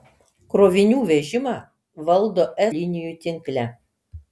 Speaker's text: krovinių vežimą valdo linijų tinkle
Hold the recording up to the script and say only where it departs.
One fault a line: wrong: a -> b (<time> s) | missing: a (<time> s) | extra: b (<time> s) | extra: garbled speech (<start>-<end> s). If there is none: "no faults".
no faults